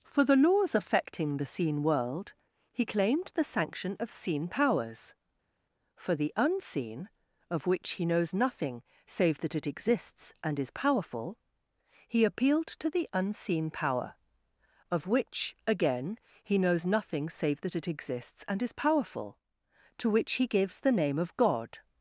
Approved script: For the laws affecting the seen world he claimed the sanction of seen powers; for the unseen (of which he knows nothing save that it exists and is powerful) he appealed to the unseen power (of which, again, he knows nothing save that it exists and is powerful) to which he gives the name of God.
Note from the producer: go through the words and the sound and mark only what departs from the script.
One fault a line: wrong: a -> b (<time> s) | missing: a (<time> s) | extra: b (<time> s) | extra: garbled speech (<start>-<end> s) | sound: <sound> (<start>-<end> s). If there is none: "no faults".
no faults